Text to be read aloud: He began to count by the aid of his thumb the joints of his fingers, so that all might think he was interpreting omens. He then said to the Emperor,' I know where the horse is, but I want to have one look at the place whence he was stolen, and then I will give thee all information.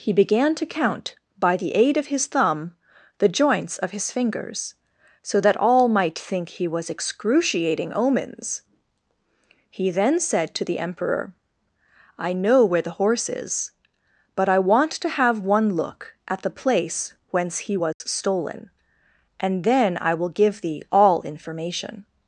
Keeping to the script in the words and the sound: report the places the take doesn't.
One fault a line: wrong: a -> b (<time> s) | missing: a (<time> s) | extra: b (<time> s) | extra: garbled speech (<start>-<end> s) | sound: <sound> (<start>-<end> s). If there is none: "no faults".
wrong: interpreting -> excruciating (6.9 s)
sound: dropout (17.9-18.0 s)